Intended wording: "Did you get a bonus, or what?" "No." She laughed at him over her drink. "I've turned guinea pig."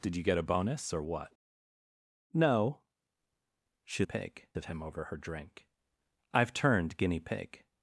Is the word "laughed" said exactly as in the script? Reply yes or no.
no